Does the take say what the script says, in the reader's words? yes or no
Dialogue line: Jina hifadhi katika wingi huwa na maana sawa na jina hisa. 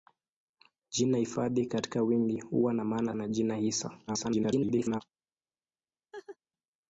no